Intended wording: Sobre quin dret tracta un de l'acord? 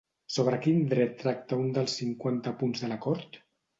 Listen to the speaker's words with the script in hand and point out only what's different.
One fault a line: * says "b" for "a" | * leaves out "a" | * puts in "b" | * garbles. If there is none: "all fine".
* puts in "dels cinquanta punts"